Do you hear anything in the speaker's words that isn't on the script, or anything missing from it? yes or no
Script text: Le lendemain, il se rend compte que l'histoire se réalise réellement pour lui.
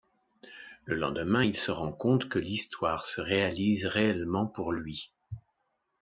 no